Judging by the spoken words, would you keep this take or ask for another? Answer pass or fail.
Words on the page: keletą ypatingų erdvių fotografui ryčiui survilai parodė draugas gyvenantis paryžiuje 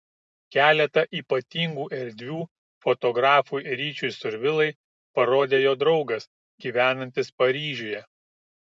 fail